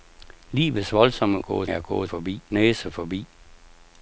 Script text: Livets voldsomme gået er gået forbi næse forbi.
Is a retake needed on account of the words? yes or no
no